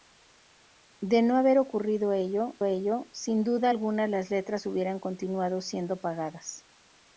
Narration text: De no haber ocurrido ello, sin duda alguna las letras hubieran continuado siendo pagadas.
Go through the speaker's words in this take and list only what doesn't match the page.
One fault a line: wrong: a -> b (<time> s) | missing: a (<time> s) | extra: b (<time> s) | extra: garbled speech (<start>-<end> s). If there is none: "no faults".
extra: ello (2.6 s)